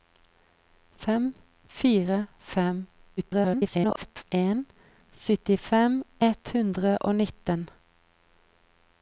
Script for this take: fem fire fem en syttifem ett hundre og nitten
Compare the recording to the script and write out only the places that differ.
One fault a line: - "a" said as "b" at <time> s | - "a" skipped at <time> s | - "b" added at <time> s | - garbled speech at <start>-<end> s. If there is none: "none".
- garbled speech at 3.2-4.2 s